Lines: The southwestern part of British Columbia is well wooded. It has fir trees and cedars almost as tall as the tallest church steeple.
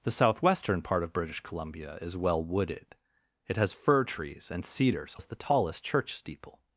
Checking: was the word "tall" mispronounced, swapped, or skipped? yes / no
yes